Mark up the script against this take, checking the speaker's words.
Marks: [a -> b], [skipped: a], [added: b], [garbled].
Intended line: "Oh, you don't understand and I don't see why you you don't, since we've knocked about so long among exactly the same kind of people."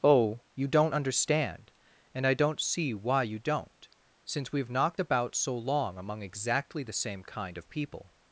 "Oh, you don't understand and I don't see why you [skipped: you] don't, since we've knocked about so long among exactly the same kind of people."